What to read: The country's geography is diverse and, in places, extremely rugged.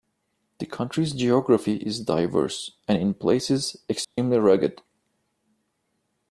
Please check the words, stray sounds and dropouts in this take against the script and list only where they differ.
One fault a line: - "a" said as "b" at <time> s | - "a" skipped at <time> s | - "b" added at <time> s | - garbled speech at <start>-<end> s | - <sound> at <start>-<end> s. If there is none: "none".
- dropout at 4.0-4.2 s